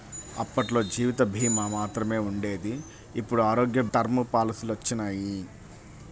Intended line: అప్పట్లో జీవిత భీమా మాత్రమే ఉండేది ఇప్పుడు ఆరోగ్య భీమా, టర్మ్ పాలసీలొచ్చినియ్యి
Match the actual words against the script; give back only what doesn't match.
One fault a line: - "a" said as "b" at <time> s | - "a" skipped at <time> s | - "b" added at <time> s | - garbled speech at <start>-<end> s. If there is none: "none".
- "భీమా" skipped at 3.8 s